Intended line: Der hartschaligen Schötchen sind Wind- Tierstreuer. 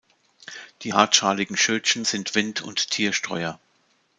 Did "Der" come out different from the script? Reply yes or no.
yes